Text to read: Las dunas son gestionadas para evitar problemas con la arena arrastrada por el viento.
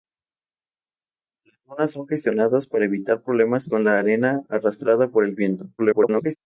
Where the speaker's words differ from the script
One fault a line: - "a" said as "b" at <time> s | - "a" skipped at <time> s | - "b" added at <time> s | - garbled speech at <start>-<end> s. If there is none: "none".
- garbled speech at 5.8-6.4 s